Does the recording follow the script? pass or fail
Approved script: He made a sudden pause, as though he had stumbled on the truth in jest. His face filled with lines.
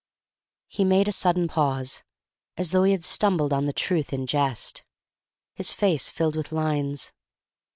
pass